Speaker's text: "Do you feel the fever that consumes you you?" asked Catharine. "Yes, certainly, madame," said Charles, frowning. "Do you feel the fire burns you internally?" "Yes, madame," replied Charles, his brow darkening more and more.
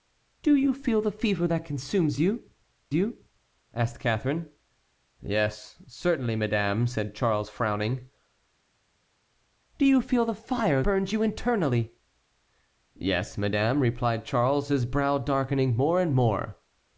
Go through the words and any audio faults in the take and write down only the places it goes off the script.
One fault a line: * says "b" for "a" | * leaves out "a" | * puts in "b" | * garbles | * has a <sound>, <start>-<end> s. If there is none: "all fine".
all fine